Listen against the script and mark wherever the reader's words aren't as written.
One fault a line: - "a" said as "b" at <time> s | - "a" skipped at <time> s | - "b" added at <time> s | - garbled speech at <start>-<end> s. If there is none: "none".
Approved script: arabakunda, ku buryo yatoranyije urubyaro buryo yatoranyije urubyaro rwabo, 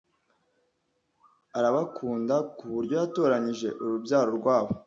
- "buryo yatoranyije urubyaro" skipped at 4.3 s